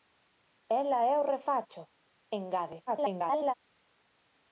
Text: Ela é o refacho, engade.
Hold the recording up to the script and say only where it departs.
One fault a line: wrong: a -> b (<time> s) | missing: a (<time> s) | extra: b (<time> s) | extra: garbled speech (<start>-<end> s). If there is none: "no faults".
extra: garbled speech (2.9-3.5 s)